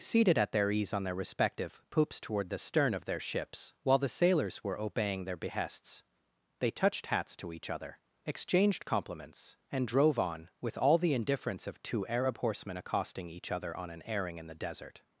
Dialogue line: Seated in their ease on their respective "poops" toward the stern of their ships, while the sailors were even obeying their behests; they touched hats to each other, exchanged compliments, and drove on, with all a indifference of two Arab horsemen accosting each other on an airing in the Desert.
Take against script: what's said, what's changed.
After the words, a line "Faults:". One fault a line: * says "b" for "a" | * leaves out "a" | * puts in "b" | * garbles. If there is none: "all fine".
Seated at their ease on their respective "poops" toward the stern of their ships, while the sailors were obeying their behests; they touched hats to each other, exchanged compliments, and drove on, with all the indifference of two Arab horsemen accosting each other on an airing in the Desert.
Faults:
* says "at" for "in"
* leaves out "even"
* says "the" for "a"